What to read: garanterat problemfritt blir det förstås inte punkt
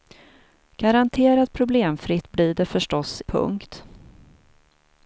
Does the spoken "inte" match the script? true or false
false